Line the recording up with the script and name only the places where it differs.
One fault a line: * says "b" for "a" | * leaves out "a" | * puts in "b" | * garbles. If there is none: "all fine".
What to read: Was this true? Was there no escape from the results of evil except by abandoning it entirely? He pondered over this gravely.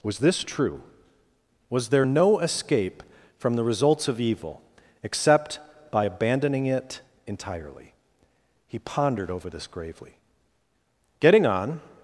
* puts in "Getting on"